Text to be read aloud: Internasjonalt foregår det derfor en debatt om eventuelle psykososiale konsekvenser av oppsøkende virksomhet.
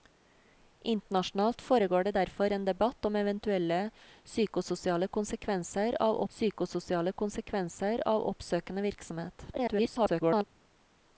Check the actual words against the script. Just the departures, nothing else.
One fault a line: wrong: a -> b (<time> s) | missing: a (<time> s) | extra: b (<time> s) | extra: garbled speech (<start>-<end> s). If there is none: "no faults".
extra: psykososiale konsekvenser av (6.3 s)
extra: garbled speech (9.5-10.4 s)